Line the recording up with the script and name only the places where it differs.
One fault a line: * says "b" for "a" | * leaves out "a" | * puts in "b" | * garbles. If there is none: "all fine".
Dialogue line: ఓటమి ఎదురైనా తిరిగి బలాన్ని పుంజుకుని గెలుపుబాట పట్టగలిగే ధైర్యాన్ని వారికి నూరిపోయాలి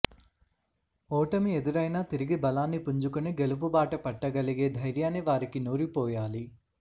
all fine